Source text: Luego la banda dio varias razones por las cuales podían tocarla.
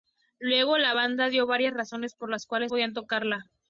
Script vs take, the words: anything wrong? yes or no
no